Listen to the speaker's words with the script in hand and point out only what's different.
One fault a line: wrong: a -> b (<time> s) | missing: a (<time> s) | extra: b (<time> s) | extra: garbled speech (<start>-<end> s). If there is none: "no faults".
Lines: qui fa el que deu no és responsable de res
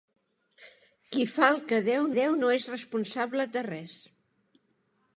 extra: deu (2.2 s)